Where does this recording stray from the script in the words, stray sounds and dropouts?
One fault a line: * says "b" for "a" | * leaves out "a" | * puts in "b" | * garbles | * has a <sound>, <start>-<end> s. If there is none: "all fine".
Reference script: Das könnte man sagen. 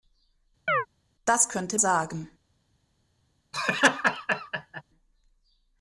* has a chirp, 0.7-0.9 s
* leaves out "man"
* has a laugh, 3.5-4.8 s